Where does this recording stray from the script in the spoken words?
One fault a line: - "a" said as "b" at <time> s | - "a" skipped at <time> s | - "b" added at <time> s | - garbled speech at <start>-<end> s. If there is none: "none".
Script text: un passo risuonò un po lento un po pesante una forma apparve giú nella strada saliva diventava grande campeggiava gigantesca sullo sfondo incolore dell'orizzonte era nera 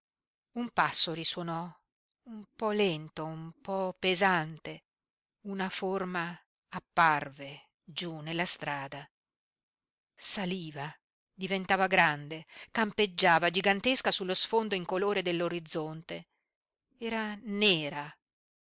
none